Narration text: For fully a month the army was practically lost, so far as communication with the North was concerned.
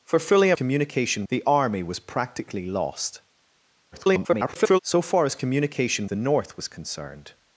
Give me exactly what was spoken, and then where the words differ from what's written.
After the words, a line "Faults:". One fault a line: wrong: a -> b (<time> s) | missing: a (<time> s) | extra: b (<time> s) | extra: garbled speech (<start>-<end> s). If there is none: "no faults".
For fully a communication the army was practically lost, [garbled] so far as communication the North was concerned.
Faults:
wrong: month -> communication (0.5 s)
extra: garbled speech (3.9-4.8 s)
missing: with (6.1 s)